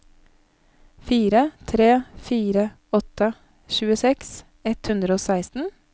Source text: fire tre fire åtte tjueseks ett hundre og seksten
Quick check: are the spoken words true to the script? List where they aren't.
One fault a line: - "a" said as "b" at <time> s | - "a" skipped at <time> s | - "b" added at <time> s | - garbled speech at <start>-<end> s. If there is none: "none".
none